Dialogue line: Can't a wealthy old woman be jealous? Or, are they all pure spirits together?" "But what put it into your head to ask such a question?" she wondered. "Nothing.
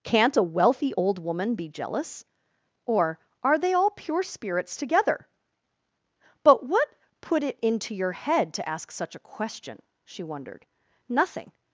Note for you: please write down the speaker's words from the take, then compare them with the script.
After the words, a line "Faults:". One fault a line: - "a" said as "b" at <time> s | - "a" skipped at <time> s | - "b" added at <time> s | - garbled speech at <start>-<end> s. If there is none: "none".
Can't a wealthy old woman be jealous? Or, are they all pure spirits together?" "But what put it into your head to ask such a question?" she wondered. "Nothing.
Faults:
none